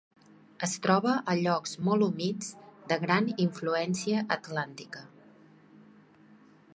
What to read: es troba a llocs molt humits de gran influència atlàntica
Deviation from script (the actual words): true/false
false